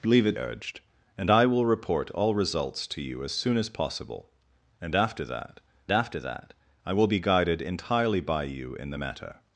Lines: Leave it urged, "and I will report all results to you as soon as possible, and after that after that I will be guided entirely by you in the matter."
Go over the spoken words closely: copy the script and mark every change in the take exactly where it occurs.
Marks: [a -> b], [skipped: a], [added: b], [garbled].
Leave it urged, "and I will report all results to you as soon as possible, and after that after that I will be guided entirely by you in the matter."